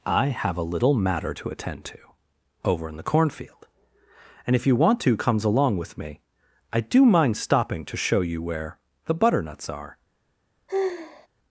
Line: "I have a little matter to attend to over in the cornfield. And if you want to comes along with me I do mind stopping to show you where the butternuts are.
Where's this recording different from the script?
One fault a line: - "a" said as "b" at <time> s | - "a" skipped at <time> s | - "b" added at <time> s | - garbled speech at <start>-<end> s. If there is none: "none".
none